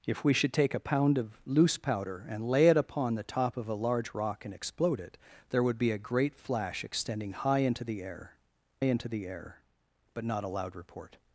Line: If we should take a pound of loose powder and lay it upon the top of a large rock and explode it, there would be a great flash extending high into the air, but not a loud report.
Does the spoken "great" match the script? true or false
true